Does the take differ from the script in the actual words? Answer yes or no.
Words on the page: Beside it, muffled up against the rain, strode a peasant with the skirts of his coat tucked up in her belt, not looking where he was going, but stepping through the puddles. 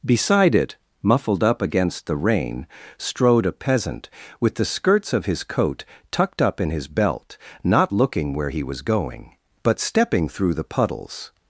yes